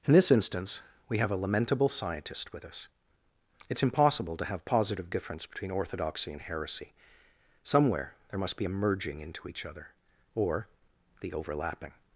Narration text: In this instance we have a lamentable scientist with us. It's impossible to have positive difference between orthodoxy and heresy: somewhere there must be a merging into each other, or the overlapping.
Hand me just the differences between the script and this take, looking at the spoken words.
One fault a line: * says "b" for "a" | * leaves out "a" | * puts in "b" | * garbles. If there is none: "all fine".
all fine